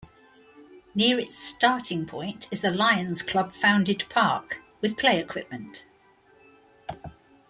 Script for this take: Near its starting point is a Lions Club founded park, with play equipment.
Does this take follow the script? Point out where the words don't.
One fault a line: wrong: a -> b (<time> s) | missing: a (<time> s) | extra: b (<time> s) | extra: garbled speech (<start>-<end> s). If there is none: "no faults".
no faults